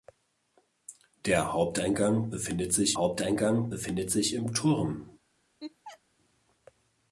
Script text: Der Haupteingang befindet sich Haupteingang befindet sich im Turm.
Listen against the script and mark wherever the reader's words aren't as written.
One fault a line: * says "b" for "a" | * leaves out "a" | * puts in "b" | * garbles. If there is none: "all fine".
all fine